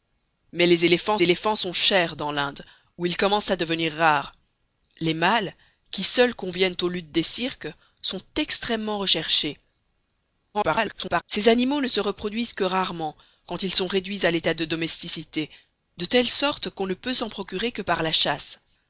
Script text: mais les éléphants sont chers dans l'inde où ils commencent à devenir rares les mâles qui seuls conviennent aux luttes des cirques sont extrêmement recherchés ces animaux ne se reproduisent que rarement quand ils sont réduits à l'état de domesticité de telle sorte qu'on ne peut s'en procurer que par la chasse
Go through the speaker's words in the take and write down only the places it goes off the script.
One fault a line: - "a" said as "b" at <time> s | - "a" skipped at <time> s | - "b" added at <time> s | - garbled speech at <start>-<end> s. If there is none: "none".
- "éléphants" added at 1.2 s
- garbled speech at 10.5-11.2 s